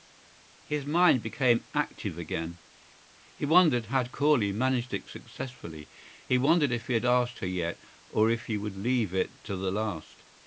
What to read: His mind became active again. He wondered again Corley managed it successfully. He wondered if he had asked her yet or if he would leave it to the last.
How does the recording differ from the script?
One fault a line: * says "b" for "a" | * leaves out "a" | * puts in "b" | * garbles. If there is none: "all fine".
* says "had" for "again"